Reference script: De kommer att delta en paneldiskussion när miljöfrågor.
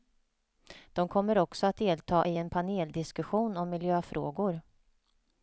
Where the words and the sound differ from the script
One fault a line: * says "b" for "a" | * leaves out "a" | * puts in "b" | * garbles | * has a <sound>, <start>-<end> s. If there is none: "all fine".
* puts in "också"
* puts in "i"
* says "om" for "när"